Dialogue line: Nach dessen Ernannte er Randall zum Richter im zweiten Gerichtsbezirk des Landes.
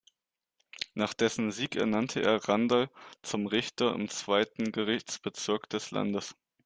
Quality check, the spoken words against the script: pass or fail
fail